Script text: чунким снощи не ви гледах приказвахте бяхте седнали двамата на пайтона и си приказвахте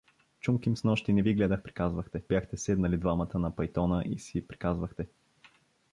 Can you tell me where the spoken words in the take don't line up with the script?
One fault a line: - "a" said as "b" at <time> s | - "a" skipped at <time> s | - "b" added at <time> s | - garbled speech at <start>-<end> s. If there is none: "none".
none